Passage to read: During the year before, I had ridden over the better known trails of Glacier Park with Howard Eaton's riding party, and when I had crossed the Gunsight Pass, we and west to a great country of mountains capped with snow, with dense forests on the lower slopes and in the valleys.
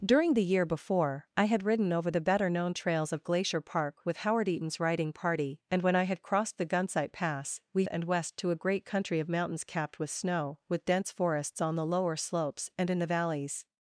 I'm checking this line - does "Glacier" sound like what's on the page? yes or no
yes